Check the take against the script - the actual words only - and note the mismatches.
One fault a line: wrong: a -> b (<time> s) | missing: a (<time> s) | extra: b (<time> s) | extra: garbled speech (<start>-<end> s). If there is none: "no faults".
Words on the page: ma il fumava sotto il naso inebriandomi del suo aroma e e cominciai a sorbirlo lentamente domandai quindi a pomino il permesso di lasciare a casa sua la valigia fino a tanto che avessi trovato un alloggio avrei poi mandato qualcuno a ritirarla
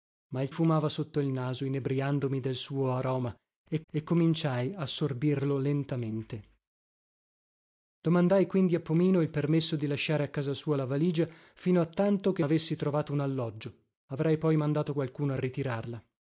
no faults